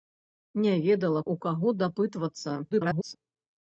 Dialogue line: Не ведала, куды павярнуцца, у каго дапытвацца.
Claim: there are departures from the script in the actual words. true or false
true